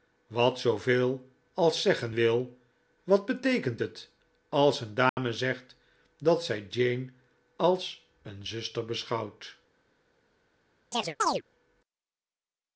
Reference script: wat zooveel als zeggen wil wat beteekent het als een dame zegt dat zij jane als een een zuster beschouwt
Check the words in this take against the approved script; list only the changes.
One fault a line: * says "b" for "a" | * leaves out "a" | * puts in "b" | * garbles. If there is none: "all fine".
* leaves out "een"